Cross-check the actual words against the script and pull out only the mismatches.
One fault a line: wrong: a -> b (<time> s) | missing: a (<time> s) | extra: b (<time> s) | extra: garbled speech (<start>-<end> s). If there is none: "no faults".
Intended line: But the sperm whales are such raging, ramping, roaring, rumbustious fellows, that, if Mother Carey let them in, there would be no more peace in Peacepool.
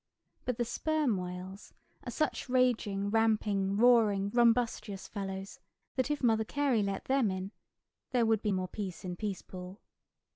missing: no (8.5 s)